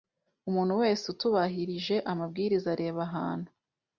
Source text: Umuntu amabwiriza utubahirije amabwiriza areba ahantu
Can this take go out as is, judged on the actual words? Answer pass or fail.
fail